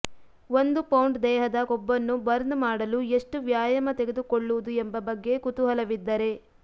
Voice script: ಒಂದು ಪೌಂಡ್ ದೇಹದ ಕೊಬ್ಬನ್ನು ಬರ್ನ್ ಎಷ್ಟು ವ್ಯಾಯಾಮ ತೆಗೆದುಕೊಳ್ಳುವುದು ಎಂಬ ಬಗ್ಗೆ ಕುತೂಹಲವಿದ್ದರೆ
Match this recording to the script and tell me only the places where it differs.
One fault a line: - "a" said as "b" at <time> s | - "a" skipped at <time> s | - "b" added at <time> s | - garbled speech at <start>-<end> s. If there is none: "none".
- "ಮಾಡಲು" added at 2.6 s